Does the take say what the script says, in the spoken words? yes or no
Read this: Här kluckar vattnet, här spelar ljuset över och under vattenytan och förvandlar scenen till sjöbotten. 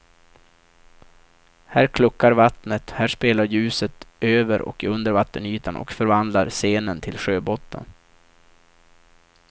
yes